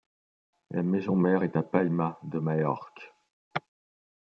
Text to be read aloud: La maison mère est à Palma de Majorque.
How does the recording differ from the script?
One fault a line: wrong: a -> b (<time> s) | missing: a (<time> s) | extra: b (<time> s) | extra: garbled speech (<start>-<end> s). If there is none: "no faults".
no faults